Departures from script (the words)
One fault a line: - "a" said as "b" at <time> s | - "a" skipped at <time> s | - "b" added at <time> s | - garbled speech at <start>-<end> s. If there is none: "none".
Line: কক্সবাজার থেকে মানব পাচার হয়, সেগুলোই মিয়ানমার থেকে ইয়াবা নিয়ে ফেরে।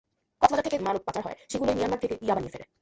none